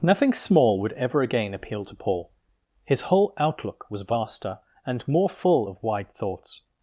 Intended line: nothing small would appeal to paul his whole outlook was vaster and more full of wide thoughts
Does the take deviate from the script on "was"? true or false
false